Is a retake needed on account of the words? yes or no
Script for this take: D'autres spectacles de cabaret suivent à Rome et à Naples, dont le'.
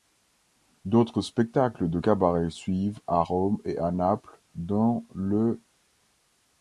no